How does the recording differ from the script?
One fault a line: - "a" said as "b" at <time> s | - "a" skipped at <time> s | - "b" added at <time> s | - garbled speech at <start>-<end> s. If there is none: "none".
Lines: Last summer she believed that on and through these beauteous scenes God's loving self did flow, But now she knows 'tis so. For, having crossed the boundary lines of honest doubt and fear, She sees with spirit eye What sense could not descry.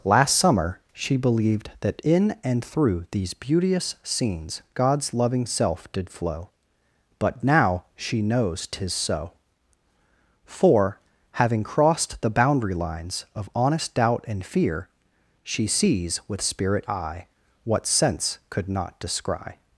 - "on" said as "in" at 2.0 s